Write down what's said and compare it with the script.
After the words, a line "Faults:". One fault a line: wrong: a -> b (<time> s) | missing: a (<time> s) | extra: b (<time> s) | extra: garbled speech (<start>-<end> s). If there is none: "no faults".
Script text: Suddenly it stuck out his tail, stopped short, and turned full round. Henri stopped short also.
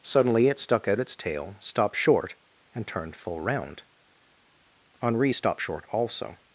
Suddenly it stuck out its tail, stopped short, and turned full round. Henri stopped short also.
Faults:
wrong: his -> its (1.0 s)